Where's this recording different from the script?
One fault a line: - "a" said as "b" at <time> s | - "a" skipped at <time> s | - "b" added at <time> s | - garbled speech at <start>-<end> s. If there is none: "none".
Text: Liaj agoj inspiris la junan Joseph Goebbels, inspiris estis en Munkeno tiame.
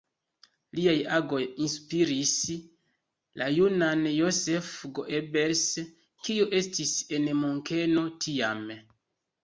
- "inspiris" said as "kiu" at 6.2 s